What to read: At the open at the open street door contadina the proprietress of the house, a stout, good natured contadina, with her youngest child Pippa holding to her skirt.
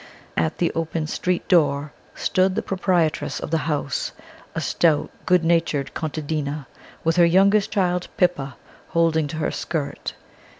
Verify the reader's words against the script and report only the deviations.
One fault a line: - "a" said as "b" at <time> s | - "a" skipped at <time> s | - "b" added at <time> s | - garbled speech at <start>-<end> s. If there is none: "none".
- "at the open" skipped at 1.1 s
- "contadina" said as "stood" at 2.1 s